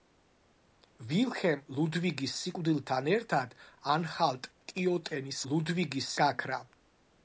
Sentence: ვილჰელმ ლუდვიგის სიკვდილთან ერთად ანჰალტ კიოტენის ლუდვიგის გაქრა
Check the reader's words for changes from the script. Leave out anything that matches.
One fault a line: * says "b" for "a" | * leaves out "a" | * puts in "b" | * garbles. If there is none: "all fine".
all fine